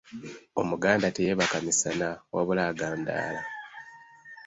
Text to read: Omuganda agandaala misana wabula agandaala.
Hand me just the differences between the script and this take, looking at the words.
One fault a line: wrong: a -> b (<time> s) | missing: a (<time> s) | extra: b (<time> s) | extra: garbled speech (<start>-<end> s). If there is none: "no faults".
wrong: agandaala -> teyeebaka (1.1 s)